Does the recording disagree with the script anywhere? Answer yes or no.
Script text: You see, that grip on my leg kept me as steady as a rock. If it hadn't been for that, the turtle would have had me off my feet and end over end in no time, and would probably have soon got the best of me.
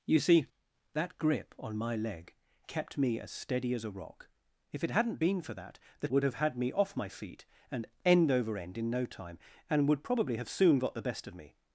yes